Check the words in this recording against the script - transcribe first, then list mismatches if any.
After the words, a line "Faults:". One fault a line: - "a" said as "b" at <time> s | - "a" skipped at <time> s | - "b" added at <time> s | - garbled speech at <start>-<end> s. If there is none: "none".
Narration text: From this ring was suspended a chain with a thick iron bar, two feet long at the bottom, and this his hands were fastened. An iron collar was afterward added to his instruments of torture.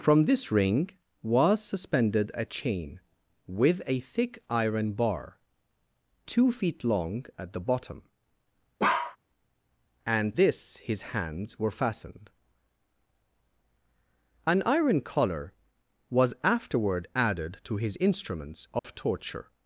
From this ring was suspended a chain with a thick iron bar, two feet long at the bottom, and this his hands were fastened. An iron collar was afterward added to his instruments of torture.
Faults:
none